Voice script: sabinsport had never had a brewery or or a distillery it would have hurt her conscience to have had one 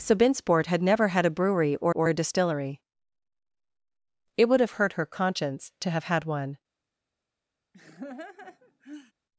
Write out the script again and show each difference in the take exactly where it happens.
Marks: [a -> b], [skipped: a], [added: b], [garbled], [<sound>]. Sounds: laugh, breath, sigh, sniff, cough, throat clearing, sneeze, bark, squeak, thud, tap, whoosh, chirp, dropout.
sabinsport had never had a brewery or or a distillery it would have hurt her conscience to have had one [laugh]